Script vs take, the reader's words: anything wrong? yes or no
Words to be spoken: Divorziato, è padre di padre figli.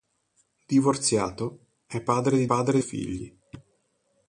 no